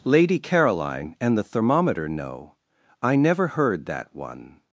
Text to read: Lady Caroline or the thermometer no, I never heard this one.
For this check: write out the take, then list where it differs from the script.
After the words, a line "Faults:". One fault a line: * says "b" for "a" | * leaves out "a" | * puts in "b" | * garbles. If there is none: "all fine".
Lady Caroline and the thermometer no, I never heard that one.
Faults:
* says "and" for "or"
* says "that" for "this"